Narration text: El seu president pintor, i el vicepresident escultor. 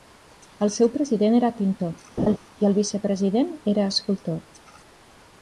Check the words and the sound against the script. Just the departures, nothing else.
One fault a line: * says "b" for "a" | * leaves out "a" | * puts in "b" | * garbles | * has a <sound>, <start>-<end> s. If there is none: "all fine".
* puts in "era"
* has a laugh, 2.2-2.4 s
* puts in "era"